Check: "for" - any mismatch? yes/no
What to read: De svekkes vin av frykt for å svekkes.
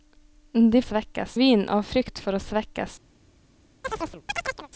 no